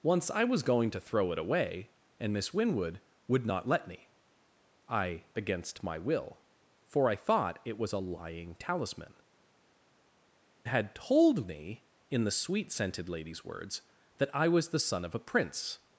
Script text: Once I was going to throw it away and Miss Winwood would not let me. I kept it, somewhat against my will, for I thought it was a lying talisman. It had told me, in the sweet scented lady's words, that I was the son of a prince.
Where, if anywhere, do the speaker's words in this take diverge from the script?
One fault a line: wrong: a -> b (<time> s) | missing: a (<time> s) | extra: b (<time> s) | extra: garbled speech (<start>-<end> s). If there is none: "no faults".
missing: kept it somewhat (5.2 s)
missing: It (9.1 s)